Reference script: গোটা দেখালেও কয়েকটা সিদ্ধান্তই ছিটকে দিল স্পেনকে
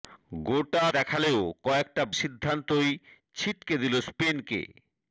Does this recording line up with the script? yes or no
yes